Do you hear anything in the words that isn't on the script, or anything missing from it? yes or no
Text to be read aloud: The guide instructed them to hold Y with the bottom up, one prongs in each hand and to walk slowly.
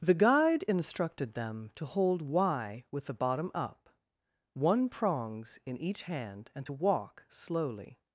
no